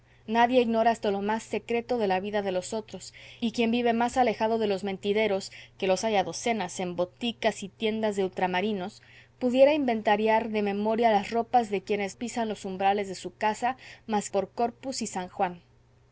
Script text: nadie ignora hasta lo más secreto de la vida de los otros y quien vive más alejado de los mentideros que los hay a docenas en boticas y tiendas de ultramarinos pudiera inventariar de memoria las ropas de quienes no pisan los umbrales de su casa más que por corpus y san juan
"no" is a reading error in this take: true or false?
true